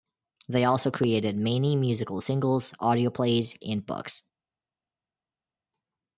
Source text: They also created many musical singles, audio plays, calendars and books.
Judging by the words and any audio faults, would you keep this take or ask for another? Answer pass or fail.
fail